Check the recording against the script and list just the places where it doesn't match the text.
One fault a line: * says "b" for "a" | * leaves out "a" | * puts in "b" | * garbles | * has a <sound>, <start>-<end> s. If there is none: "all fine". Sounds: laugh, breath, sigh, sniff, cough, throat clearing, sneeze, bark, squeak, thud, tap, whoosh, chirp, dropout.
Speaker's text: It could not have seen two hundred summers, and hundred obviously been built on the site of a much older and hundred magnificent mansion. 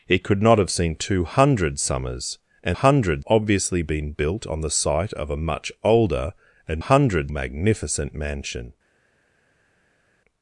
all fine